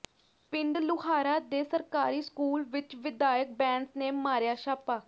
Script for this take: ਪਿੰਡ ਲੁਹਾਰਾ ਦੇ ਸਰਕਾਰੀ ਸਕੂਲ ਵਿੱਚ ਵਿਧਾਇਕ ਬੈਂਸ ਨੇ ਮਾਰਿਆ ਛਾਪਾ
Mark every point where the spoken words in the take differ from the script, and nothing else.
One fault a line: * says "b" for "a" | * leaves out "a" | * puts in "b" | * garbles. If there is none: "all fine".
all fine